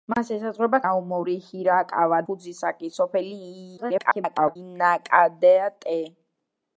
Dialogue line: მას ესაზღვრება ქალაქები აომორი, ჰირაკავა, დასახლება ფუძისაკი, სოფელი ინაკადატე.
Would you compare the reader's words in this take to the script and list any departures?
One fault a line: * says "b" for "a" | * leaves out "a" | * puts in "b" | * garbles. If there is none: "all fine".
* leaves out "ქალაქები"
* leaves out "დასახლება"
* garbles